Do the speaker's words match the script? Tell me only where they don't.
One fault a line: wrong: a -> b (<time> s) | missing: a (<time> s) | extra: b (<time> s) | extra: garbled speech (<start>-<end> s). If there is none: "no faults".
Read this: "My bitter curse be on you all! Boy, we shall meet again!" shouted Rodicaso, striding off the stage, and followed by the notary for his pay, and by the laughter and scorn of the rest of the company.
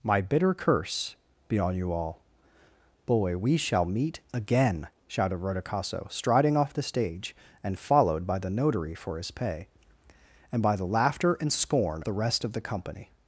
missing: of (12.0 s)